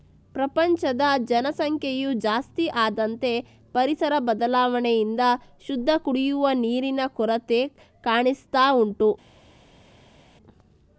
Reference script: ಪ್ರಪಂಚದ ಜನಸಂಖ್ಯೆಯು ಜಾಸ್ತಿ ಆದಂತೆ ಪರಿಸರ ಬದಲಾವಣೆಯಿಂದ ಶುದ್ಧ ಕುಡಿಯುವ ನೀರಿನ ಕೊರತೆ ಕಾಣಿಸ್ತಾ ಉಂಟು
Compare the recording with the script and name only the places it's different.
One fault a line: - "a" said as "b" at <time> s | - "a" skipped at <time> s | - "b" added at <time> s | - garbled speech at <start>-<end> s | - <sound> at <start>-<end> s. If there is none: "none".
none